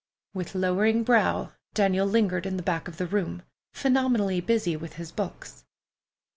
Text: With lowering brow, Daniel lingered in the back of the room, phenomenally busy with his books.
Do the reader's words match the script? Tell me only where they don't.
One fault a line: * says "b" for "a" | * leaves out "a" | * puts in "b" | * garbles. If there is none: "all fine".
all fine